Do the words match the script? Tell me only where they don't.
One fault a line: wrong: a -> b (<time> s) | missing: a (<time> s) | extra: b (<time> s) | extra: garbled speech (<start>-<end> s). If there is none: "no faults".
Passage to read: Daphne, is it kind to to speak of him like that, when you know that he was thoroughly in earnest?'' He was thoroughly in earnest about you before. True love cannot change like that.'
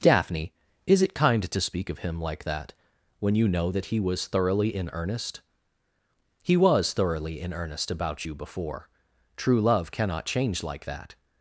missing: to (1.6 s)